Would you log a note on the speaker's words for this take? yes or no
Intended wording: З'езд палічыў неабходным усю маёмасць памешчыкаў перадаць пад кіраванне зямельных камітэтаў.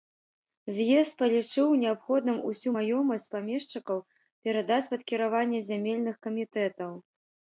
no